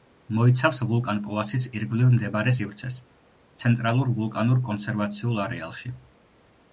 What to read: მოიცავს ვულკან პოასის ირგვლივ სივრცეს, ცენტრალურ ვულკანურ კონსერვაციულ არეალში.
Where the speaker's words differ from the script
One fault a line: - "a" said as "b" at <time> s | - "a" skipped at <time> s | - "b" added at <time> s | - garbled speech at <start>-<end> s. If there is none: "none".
- "მდებარე" added at 2.1 s